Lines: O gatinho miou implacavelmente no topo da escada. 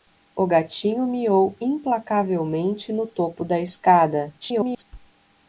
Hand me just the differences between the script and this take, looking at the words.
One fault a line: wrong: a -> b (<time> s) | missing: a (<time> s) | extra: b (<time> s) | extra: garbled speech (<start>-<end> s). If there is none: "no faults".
extra: garbled speech (4.4-4.8 s)